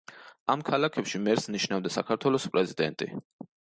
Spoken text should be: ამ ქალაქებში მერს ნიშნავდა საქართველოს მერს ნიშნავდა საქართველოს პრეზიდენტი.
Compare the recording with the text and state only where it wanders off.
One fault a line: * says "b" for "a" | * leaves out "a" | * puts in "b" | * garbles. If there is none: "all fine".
* leaves out "მერს ნიშნავდა საქართველოს"